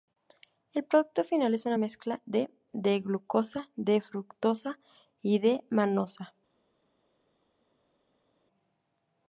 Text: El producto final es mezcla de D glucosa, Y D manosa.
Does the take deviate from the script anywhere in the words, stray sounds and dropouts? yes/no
yes